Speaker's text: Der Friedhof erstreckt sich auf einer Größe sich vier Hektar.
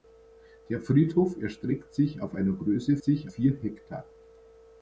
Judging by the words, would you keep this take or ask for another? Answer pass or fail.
pass